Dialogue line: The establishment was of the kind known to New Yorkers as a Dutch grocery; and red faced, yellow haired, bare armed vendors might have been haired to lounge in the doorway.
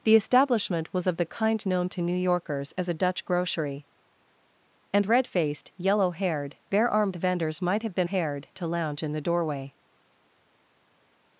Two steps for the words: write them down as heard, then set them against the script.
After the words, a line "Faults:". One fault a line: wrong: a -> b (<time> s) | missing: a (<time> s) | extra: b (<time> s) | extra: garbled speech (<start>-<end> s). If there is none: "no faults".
The establishment was of the kind known to New Yorkers as a Dutch grocery; and red faced, yellow haired, bare armed vendors might have been haired to lounge in the doorway.
Faults:
no faults